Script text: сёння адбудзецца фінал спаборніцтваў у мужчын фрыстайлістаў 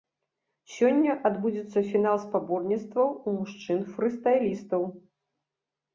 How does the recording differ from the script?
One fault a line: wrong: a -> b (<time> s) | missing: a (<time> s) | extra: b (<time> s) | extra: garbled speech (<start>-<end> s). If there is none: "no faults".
no faults